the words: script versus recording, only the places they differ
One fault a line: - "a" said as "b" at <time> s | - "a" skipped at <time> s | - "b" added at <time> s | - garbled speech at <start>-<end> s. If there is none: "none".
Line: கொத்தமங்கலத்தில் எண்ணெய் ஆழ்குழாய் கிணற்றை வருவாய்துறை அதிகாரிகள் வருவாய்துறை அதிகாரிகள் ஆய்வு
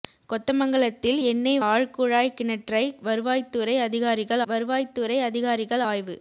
none